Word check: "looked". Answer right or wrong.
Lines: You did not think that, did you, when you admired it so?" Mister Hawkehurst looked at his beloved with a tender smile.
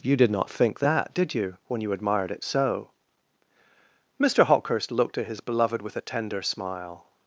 right